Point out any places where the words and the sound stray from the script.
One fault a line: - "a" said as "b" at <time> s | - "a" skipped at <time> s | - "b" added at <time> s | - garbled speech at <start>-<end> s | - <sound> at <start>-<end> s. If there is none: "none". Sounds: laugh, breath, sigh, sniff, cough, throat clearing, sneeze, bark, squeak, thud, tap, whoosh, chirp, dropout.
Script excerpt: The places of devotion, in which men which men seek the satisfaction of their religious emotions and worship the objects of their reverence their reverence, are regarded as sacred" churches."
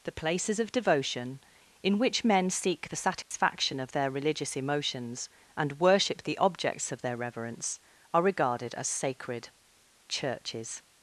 - "which men" skipped at 2.5 s
- dropout at 3.2-3.3 s
- "their reverence" skipped at 7.8 s